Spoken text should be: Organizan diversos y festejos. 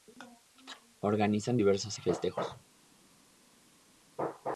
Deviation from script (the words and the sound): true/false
false